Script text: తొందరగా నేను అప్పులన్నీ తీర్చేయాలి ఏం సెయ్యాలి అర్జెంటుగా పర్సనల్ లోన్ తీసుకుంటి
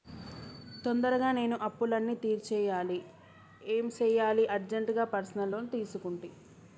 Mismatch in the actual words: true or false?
false